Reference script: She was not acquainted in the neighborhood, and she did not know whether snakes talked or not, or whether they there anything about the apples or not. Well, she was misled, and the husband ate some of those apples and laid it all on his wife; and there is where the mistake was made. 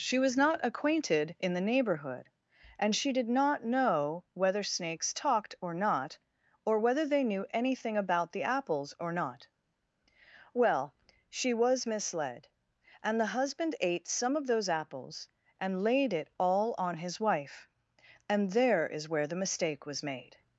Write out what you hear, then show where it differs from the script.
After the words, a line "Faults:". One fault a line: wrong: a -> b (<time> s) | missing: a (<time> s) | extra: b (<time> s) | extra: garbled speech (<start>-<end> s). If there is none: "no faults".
She was not acquainted in the neighborhood, and she did not know whether snakes talked or not, or whether they knew anything about the apples or not. Well, she was misled, and the husband ate some of those apples and laid it all on his wife; and there is where the mistake was made.
Faults:
wrong: there -> knew (7.2 s)